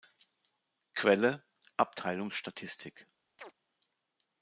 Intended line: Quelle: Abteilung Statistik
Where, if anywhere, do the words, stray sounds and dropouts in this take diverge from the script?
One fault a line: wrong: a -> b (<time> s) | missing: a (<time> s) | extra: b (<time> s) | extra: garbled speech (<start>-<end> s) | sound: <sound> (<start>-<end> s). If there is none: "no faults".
sound: chirp (3.4-3.5 s)